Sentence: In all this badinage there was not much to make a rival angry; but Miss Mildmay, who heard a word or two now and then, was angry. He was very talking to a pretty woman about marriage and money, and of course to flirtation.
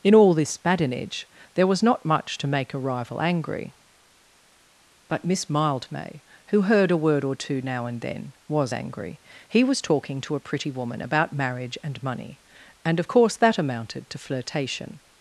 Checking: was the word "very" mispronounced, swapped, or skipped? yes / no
yes